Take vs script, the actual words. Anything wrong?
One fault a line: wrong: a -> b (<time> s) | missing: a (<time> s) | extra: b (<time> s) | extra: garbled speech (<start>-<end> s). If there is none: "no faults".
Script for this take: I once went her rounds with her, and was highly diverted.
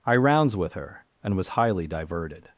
missing: once went her (0.1 s)